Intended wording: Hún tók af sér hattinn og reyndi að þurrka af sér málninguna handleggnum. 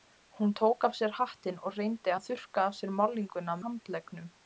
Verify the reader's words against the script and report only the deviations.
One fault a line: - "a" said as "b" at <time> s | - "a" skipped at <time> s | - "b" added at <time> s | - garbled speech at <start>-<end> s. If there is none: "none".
none